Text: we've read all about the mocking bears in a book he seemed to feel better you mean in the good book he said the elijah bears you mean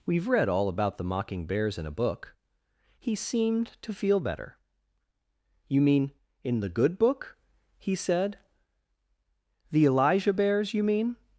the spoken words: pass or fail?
pass